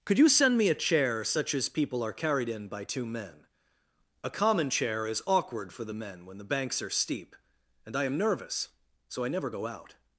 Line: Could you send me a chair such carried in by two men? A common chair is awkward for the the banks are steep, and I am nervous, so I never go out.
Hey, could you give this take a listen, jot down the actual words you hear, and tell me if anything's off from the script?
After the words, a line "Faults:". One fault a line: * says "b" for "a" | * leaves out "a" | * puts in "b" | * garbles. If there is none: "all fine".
Could you send me a chair such as people are carried in by two men? A common chair is awkward for the men when the banks are steep, and I am nervous, so I never go out.
Faults:
* puts in "as people are"
* puts in "men when"